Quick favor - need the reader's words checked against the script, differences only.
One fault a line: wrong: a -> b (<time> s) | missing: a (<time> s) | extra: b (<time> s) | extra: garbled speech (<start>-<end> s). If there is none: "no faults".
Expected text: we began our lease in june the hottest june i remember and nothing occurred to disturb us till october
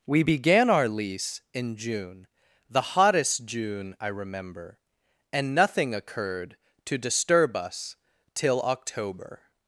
no faults